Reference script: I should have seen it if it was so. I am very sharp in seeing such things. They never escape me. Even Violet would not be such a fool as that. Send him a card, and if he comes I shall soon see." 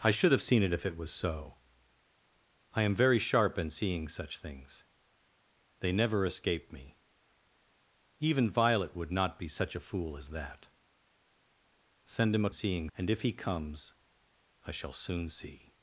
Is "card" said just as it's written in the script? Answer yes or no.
no